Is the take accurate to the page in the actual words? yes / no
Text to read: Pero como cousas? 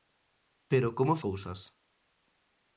yes